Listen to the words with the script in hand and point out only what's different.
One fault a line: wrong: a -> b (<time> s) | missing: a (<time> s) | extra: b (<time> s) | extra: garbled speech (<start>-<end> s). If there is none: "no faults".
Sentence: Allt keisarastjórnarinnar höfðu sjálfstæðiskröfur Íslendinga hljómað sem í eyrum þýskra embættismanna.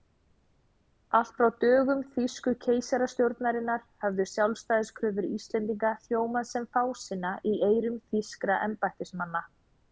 extra: frá dögum þýsku (1.4 s)
extra: fásinna (6.8 s)